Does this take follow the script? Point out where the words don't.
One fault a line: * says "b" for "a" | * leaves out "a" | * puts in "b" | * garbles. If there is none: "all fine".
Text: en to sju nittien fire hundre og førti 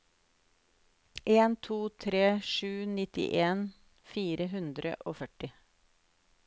* puts in "tre"